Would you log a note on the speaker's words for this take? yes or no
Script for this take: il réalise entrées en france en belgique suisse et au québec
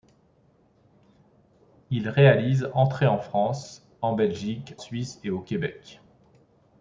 no